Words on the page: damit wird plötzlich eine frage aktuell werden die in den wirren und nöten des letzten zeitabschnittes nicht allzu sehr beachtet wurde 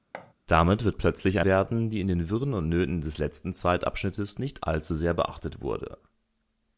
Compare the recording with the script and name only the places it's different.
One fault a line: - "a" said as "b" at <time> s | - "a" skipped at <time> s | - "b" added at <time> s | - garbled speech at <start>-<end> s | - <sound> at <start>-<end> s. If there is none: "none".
- thud at 0.1-0.3 s
- "eine frage aktuell" skipped at 1.4 s